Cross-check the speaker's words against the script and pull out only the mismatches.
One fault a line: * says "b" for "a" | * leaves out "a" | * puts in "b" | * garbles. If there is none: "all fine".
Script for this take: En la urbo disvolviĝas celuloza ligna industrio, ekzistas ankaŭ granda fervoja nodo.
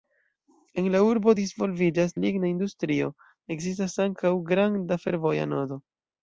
* leaves out "celuloza"